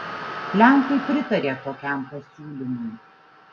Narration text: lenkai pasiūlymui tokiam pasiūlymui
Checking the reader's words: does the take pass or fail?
fail